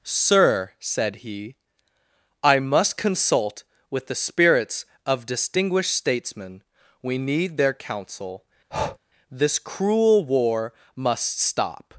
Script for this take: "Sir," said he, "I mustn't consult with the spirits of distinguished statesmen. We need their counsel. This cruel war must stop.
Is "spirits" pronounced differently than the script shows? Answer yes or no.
no